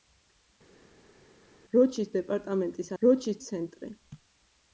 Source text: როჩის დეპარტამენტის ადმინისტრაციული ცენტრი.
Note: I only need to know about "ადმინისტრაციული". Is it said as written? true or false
false